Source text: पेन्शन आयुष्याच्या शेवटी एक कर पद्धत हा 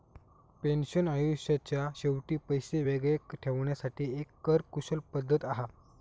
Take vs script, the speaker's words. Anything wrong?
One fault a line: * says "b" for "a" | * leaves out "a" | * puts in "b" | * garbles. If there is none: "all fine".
* puts in "पैशे वेगळे ठेवण्यासाठी"
* puts in "कुशल"